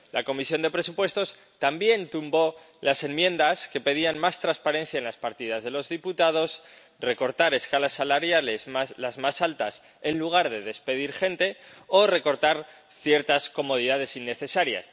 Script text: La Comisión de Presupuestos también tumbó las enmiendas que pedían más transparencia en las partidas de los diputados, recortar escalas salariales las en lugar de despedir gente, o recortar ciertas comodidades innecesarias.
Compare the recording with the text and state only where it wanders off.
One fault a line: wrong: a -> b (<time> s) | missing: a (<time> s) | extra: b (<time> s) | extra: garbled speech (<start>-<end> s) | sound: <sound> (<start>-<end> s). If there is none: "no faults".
extra: más altas (9.2 s)